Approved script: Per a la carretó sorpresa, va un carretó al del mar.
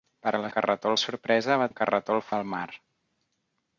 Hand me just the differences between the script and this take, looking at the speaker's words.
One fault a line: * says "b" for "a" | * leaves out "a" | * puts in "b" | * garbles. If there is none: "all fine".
all fine